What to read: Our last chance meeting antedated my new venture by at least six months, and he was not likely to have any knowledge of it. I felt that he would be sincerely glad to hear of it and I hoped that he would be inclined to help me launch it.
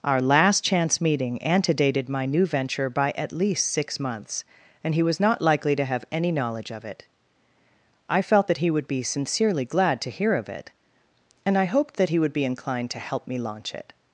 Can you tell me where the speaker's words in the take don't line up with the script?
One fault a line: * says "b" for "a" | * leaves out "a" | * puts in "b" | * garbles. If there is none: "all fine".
all fine